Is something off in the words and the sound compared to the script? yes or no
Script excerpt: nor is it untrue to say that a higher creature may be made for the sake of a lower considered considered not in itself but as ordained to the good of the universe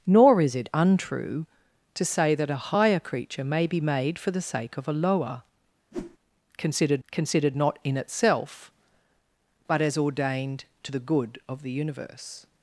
yes